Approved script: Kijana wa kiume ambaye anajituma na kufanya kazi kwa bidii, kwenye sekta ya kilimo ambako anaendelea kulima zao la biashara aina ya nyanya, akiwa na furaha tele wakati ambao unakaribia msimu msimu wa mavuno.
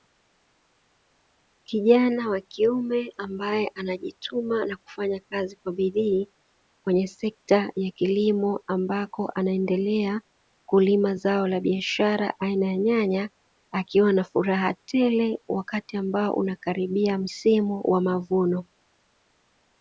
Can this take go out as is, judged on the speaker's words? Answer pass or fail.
fail